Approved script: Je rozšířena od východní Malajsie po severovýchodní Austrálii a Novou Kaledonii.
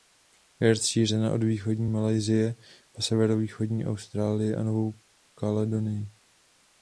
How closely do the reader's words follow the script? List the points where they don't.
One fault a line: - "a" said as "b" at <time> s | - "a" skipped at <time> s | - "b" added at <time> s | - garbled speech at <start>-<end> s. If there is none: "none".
none